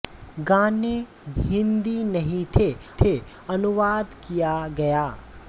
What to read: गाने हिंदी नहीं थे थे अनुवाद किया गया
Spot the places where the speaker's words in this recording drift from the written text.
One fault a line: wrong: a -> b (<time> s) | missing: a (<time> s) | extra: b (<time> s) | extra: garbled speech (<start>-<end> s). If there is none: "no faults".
no faults